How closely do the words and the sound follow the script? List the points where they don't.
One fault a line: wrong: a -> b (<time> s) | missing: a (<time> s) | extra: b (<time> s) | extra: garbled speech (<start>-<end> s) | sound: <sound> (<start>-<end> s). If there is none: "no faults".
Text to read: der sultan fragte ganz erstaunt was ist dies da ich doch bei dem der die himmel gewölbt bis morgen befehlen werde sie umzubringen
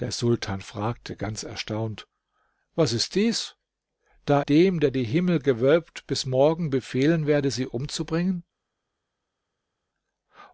missing: ich doch bei (4.5 s)